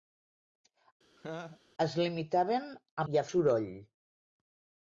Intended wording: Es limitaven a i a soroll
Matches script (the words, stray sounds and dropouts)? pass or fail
fail